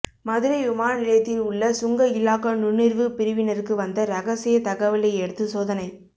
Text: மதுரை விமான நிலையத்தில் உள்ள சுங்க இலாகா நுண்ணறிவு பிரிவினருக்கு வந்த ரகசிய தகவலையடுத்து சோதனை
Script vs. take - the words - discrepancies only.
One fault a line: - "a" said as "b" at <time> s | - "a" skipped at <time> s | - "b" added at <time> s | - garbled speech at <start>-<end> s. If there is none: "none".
none